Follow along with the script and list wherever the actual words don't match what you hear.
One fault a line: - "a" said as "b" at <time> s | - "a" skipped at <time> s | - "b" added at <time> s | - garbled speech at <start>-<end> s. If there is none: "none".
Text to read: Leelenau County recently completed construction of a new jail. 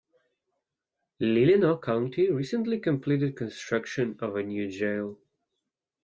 none